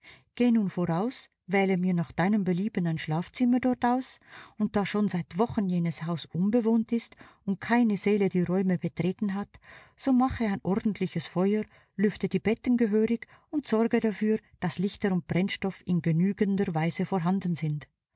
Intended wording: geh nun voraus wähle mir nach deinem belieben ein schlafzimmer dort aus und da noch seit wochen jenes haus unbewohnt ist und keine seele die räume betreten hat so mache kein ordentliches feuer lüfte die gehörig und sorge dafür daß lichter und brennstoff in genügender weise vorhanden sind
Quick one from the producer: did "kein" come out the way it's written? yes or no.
no